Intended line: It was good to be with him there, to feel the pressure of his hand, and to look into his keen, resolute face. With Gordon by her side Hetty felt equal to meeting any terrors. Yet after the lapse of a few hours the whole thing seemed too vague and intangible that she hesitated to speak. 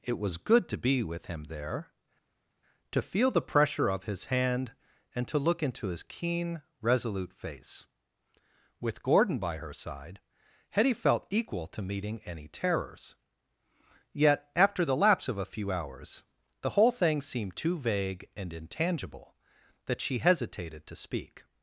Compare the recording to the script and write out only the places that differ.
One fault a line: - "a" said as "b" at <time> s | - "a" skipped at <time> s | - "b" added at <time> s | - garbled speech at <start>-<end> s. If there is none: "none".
none